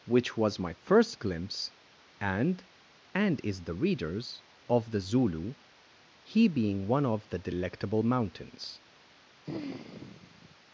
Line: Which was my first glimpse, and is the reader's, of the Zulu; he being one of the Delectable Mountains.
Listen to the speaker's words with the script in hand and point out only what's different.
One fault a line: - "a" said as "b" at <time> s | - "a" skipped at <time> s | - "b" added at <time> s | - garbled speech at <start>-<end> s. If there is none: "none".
- "and" added at 3.1 s